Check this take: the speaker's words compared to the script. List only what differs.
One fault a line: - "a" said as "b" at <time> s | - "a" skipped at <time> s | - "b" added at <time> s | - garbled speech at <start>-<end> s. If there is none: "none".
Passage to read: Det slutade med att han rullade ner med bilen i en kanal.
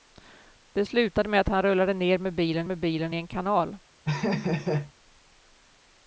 - "med bilen" added at 2.6 s